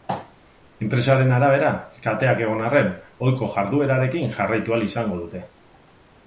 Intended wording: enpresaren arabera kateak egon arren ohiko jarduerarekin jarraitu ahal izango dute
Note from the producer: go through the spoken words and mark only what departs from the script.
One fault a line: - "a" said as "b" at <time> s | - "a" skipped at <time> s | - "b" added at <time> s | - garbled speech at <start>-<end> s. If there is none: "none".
none